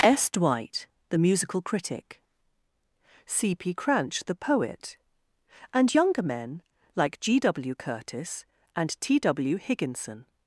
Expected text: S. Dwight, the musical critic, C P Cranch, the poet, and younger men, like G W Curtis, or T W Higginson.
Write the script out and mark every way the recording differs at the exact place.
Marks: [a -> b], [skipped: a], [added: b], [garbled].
S. Dwight, the musical critic, C P Cranch, the poet, and younger men, like G W Curtis, [or -> and] T W Higginson.